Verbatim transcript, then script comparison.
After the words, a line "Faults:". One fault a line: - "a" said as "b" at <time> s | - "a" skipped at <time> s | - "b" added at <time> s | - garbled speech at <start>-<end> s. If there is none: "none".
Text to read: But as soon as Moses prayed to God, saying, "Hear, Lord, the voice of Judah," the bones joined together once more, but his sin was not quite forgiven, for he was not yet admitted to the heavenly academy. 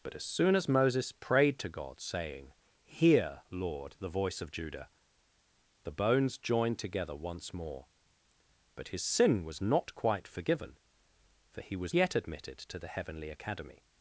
But as soon as Moses prayed to God, saying, "Hear, Lord, the voice of Judah," the bones joined together once more, but his sin was not quite forgiven, for he was yet admitted to the heavenly academy.
Faults:
- "not" skipped at 11.9 s